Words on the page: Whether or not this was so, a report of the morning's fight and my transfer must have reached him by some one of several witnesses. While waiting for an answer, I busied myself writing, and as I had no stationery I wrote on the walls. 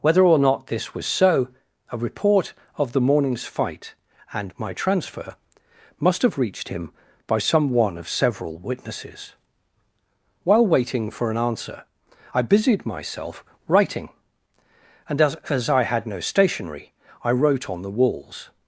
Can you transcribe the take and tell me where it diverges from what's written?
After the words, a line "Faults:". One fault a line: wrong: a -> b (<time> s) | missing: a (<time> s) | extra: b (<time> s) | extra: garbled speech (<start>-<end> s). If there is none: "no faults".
Whether or not this was so, a report of the morning's fight and my transfer must have reached him by some one of several witnesses. While waiting for an answer, I busied myself writing, and as as I had no stationery I wrote on the walls.
Faults:
extra: as (15.5 s)